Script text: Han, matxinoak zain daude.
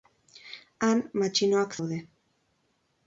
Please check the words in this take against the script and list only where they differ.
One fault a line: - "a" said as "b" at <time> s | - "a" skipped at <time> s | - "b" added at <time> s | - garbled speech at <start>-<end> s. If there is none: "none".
- "zain" skipped at 1.8 s